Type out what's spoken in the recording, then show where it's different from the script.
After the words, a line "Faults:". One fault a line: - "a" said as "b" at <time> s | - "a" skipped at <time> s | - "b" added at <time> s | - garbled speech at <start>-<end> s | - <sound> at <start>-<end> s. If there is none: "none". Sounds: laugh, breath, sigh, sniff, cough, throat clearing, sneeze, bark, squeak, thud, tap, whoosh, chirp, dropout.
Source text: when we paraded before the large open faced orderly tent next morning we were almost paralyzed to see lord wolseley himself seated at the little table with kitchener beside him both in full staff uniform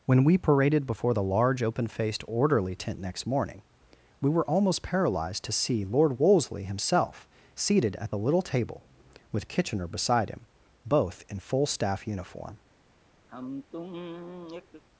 when we paraded before the large open faced orderly tent next morning we were almost paralyzed to see lord wolseley himself seated at the little table with kitchener beside him both in full staff uniform
Faults:
- sigh at 13.3-14.8 s